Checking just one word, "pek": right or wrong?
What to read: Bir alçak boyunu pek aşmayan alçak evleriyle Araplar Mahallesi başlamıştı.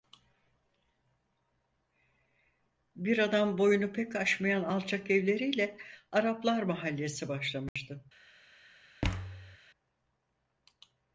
right